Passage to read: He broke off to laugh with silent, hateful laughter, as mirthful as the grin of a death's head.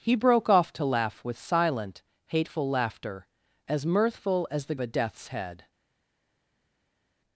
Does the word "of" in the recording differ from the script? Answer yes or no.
yes